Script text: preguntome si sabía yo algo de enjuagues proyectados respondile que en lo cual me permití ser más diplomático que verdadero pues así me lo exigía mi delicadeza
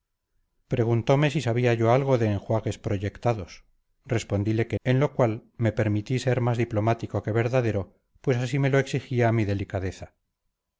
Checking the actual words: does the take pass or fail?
pass